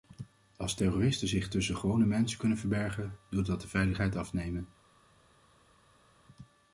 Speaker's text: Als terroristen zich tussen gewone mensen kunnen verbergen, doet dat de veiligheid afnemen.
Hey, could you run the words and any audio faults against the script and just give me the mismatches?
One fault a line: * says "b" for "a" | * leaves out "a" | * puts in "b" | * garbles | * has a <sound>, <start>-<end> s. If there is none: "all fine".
all fine